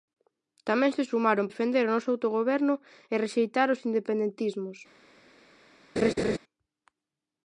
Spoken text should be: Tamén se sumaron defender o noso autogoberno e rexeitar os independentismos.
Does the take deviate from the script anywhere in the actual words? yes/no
no